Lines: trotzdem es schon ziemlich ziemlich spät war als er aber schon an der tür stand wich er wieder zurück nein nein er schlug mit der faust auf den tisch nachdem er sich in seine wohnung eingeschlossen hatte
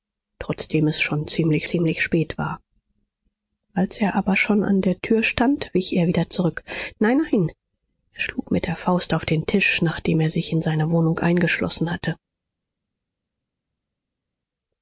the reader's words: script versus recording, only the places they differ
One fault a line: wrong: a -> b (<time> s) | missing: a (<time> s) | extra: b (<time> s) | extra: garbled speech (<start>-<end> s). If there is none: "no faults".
no faults